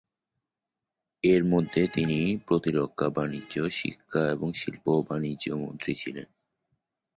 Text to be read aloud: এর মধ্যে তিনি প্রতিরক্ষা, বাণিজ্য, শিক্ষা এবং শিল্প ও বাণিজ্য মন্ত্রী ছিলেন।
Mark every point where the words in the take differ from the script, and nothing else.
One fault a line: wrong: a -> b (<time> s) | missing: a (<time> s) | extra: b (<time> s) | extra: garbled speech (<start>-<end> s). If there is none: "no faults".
no faults